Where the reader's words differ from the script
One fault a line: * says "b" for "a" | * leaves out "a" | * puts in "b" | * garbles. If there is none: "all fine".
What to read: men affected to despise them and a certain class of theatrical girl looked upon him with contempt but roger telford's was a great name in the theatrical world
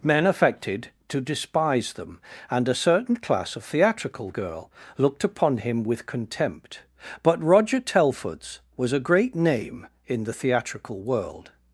all fine